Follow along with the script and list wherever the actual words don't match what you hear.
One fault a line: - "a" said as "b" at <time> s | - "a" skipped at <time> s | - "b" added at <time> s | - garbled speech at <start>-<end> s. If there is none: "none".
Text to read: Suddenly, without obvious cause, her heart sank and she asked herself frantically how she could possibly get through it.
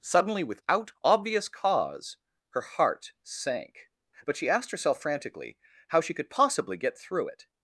- "and" said as "but" at 4.2 s